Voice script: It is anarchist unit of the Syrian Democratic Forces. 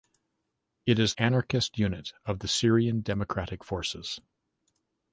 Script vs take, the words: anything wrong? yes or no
no